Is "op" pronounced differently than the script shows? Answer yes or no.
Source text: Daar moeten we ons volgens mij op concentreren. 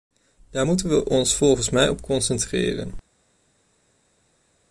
no